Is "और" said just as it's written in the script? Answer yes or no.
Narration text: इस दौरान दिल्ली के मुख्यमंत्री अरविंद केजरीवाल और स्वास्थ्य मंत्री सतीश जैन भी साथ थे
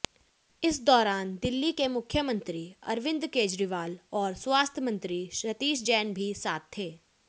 yes